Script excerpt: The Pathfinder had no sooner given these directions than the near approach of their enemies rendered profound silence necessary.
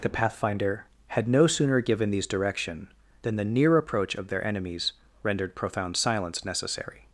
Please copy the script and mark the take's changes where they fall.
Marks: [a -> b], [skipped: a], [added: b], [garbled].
The Pathfinder had no sooner given these [directions -> direction] than the near approach of their enemies rendered profound silence necessary.